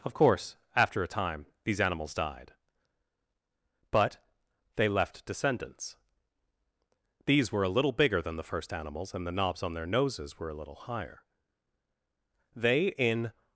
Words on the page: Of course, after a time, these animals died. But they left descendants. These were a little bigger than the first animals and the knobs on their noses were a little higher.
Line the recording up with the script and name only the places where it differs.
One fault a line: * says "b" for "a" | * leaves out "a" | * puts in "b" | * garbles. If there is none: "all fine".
* puts in "They in"